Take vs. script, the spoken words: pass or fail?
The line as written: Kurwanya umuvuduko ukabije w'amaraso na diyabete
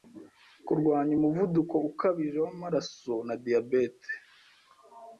pass